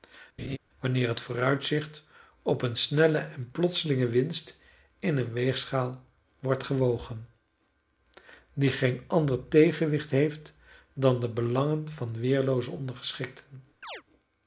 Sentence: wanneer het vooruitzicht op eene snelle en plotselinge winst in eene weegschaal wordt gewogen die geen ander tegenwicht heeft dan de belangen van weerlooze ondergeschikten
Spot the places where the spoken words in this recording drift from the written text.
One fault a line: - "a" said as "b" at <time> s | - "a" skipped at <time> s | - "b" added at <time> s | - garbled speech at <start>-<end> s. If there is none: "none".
none